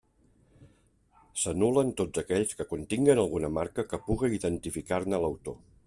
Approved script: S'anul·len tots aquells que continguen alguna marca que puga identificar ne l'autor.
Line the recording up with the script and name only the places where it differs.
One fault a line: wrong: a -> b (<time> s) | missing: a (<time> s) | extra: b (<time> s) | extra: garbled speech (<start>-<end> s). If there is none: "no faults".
no faults